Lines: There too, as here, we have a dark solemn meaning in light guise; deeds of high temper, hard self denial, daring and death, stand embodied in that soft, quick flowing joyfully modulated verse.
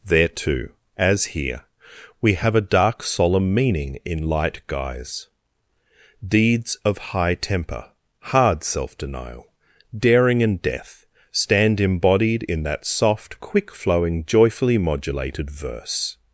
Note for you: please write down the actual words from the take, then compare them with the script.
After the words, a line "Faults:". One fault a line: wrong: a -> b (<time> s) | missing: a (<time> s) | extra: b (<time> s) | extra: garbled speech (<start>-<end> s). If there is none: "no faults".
There too, as here, we have a dark solemn meaning in light guise; deeds of high temper, hard self denial, daring and death, stand embodied in that soft, quick flowing joyfully modulated verse.
Faults:
no faults